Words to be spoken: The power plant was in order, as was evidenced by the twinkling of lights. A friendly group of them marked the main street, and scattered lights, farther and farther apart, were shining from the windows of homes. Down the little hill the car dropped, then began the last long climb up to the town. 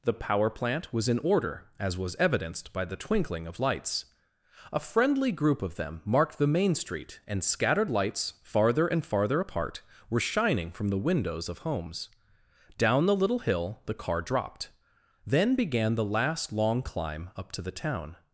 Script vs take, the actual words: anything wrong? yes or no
no